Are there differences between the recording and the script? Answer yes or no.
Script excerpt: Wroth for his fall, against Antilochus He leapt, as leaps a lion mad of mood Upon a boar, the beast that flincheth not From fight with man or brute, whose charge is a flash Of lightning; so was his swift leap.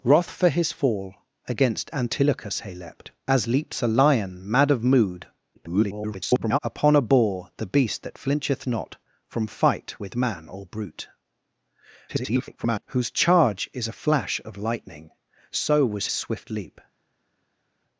yes